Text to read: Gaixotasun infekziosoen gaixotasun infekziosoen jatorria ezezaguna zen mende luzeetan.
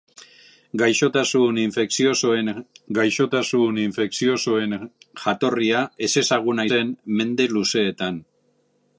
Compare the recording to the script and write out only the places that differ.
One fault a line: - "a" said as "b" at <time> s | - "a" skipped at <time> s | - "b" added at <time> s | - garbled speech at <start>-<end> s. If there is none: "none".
none